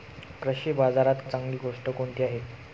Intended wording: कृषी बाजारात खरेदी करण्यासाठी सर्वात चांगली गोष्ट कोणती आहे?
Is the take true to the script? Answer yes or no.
no